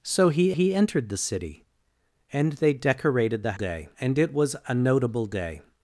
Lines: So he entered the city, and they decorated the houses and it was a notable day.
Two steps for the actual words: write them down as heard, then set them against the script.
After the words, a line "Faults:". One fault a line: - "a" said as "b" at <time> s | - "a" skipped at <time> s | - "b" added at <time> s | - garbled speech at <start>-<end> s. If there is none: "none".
So he he entered the city, and they decorated the day and it was a notable day.
Faults:
- "he" added at 0.5 s
- "houses" said as "day" at 3.5 s